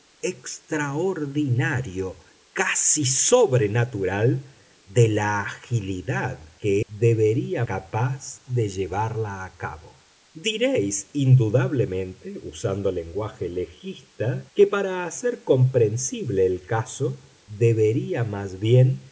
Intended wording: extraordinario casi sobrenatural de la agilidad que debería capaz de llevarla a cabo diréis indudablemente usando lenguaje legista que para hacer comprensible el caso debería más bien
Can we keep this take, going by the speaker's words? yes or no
yes